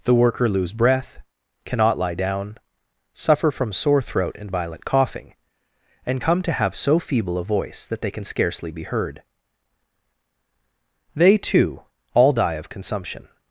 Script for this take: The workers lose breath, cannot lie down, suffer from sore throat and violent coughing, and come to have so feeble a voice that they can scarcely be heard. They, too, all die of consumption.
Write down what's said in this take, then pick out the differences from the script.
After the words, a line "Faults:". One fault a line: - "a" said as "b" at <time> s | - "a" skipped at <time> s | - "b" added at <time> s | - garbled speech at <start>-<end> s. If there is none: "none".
The worker lose breath, cannot lie down, suffer from sore throat and violent coughing, and come to have so feeble a voice that they can scarcely be heard. They, too, all die of consumption.
Faults:
- "workers" said as "worker" at 0.1 s